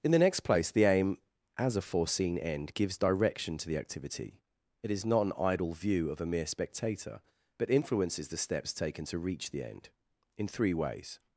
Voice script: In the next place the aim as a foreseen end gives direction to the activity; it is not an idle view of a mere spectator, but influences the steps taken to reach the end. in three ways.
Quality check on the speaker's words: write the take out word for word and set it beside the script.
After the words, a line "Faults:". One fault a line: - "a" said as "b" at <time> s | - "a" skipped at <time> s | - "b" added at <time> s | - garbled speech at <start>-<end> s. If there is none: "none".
In the next place the aim as a foreseen end gives direction to the activity; it is not an idle view of a mere spectator, but influences the steps taken to reach the end. in three ways.
Faults:
none